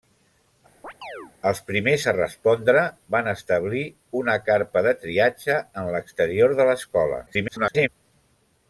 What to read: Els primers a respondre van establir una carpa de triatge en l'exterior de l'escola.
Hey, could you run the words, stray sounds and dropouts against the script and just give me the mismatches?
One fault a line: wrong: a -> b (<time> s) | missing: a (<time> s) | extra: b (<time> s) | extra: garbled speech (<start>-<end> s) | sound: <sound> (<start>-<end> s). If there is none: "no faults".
sound: chirp (0.8-1.3 s)
extra: garbled speech (7.3-7.9 s)